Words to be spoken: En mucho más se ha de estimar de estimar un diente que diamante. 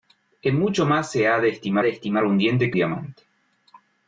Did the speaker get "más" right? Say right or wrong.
right